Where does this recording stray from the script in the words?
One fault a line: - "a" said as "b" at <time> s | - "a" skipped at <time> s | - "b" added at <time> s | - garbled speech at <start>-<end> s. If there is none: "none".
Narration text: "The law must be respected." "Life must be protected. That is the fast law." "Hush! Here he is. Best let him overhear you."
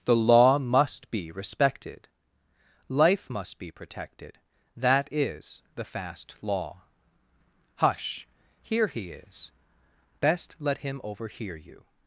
none